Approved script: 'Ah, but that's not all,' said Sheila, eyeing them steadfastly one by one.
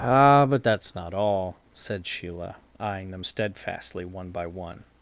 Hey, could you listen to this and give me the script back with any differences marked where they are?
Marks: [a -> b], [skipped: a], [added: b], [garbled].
'Ah, but that's not all,' said Sheila, eyeing them steadfastly one by one.